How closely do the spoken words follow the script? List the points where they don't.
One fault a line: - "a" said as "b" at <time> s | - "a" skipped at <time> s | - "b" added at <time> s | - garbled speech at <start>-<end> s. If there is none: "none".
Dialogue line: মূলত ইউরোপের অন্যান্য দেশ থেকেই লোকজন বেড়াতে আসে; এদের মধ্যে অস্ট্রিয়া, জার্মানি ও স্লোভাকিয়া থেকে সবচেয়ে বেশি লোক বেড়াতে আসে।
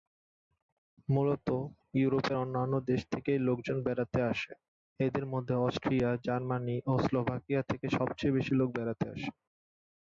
none